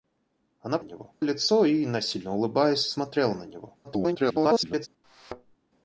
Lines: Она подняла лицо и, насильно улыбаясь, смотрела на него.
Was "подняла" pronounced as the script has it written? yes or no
no